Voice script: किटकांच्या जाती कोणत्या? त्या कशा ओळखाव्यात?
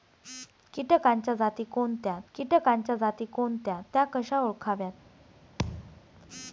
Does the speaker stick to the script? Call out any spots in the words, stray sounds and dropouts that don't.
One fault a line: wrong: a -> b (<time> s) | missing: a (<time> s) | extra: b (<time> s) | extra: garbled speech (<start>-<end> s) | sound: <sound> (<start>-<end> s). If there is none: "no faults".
extra: किटकांच्या जाती कोणत्या (2.3 s)
sound: thud (5.6-6.0 s)